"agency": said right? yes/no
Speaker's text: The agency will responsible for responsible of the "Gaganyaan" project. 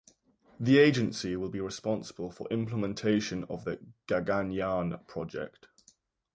yes